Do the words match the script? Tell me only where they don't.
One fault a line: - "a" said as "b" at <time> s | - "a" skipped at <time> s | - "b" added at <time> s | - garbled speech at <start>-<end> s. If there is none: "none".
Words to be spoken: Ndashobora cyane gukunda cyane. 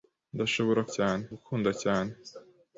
none